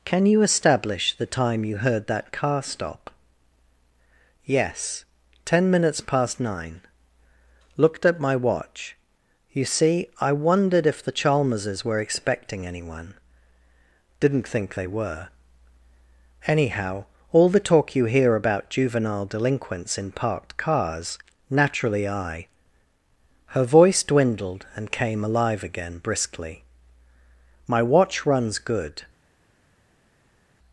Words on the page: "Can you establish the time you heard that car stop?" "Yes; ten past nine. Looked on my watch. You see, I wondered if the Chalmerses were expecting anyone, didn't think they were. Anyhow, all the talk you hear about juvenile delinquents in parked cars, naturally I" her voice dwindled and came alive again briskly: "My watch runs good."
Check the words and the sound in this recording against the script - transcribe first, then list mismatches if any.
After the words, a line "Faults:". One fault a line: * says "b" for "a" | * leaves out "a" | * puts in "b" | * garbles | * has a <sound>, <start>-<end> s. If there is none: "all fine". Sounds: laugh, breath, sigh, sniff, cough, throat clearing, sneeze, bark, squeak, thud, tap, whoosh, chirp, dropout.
"Can you establish the time you heard that car stop?" "Yes; ten minutes past nine. Looked at my watch. You see, I wondered if the Chalmerses were expecting anyone, didn't think they were. Anyhow, all the talk you hear about juvenile delinquents in parked cars, naturally I" her voice dwindled and came alive again briskly: "My watch runs good."
Faults:
* puts in "minutes"
* says "at" for "on"